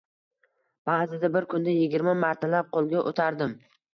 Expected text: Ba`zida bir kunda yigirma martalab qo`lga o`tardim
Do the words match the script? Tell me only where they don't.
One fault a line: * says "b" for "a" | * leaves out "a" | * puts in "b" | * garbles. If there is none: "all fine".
all fine